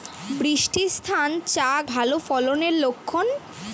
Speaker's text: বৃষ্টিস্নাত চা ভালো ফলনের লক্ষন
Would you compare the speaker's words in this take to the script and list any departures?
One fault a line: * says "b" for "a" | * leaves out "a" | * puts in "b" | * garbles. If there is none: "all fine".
all fine